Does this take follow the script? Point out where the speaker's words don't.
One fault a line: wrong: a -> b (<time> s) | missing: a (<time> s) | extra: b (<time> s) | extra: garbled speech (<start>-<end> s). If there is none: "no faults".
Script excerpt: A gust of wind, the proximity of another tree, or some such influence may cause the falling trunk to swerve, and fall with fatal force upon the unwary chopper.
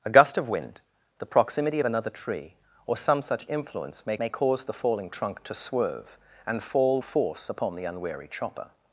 extra: may (4.2 s)
missing: with fatal (7.0 s)